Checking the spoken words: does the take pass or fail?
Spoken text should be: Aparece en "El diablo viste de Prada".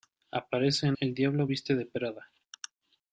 pass